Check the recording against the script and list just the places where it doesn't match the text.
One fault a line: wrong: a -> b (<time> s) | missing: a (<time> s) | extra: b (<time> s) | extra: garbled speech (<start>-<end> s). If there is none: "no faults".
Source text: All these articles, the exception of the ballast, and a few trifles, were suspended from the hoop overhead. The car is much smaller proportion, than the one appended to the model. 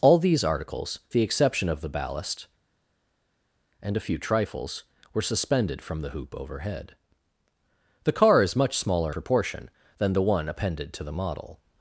no faults